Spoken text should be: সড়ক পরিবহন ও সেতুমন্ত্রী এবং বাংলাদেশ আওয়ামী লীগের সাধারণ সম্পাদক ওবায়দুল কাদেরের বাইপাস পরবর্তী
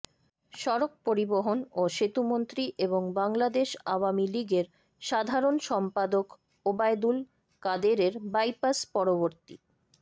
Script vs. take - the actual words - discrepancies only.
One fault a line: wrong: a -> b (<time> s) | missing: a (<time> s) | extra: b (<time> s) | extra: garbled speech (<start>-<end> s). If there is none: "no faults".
no faults